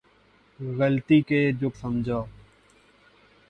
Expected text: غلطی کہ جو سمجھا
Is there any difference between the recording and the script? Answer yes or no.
no